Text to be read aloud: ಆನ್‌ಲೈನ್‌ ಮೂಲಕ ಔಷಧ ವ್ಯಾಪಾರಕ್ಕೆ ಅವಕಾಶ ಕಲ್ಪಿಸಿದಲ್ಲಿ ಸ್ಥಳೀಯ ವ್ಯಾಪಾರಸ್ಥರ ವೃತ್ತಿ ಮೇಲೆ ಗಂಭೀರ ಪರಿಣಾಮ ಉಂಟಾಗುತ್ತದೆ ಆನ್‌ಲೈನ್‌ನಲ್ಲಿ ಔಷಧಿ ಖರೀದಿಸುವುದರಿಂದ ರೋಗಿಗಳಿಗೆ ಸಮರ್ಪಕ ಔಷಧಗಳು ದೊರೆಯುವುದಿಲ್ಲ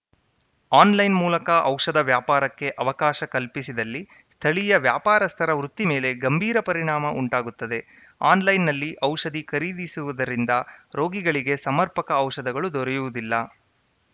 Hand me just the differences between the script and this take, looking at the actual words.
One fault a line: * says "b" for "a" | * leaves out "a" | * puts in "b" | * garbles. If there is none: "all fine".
all fine